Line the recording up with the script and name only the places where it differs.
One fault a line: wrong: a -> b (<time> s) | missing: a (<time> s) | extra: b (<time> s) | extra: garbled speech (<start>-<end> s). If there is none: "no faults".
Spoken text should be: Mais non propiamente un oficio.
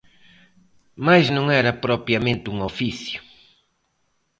extra: era (1.6 s)